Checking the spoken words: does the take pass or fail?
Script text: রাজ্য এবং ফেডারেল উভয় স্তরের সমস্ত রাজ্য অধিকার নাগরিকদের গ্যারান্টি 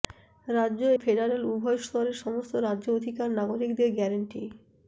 fail